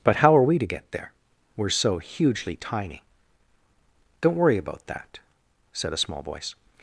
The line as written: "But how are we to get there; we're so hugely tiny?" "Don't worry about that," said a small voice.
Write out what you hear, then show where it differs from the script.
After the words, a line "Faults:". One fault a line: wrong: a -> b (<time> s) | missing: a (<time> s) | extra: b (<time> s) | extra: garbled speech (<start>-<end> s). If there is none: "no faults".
"But how are we to get there; we're so hugely tiny?" "Don't worry about that," said a small voice.
Faults:
no faults